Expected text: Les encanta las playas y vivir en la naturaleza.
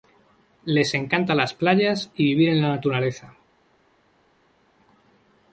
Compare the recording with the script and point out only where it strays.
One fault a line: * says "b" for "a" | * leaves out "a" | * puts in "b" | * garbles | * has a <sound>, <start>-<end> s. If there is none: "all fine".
all fine